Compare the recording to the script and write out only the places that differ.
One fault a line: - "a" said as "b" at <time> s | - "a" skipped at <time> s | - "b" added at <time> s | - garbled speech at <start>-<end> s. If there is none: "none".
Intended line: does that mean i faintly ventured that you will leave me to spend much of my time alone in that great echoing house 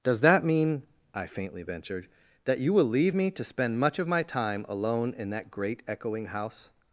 none